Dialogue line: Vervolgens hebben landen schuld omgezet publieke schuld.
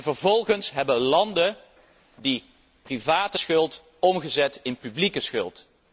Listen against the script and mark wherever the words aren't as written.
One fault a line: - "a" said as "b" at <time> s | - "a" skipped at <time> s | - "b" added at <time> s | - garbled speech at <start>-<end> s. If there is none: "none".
- "die private" added at 2.1 s
- "in" added at 4.6 s